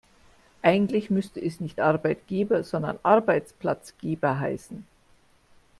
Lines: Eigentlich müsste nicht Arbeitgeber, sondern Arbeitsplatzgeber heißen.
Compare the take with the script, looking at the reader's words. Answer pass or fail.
fail